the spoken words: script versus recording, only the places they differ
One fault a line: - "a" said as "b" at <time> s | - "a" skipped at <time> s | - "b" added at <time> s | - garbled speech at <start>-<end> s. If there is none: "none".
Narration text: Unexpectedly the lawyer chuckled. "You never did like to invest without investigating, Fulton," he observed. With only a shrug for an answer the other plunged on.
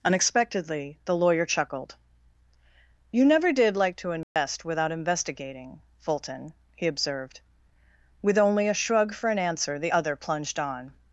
none